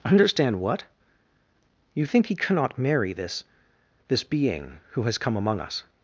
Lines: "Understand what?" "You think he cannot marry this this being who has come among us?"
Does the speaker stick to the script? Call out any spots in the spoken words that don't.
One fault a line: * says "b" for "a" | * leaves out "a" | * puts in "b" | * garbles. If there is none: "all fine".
all fine